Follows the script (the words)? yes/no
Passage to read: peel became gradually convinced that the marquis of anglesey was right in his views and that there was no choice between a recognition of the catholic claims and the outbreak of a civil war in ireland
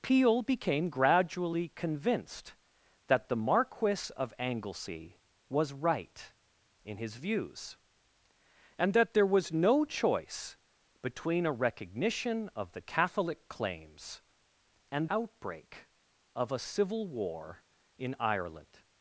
no